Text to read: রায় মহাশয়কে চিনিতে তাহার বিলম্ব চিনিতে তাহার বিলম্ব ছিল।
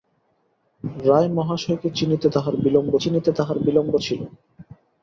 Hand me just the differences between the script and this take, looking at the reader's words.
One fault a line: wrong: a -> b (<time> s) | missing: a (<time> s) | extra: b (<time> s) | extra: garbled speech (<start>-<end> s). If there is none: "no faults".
no faults